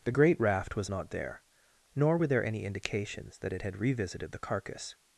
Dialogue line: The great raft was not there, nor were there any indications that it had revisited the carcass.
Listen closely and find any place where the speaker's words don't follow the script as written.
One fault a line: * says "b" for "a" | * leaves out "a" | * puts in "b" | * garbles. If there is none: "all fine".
all fine